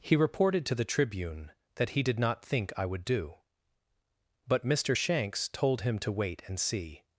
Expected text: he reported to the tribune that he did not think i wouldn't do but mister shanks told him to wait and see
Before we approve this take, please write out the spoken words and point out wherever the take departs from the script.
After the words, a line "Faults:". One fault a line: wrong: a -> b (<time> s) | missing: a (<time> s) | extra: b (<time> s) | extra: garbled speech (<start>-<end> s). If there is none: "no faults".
he reported to the tribune that he did not think i would do but mister shanks told him to wait and see
Faults:
wrong: wouldn't -> would (2.9 s)